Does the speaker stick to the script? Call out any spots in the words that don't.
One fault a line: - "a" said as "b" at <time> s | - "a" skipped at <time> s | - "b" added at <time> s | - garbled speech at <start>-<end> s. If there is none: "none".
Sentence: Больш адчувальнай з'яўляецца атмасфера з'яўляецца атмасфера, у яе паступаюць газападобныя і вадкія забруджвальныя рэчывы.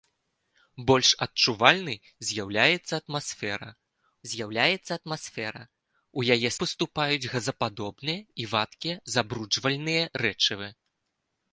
none